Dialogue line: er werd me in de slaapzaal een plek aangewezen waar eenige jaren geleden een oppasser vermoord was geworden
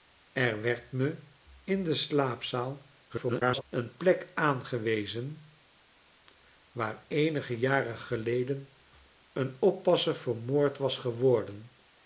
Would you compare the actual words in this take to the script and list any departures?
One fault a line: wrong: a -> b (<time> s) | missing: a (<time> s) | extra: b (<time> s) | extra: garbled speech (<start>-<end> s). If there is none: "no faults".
extra: garbled speech (3.1-3.6 s)